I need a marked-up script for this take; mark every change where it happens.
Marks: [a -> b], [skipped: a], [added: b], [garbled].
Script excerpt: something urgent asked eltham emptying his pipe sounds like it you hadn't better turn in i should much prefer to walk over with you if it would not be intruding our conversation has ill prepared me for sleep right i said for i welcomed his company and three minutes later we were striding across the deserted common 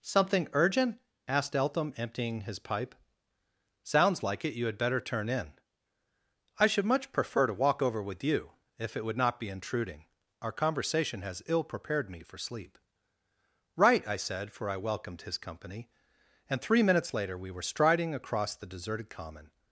something urgent asked eltham emptying his pipe sounds like it you [hadn't -> had] better turn in i should much prefer to walk over with you if it would not be intruding our conversation has ill prepared me for sleep right i said for i welcomed his company and three minutes later we were striding across the deserted common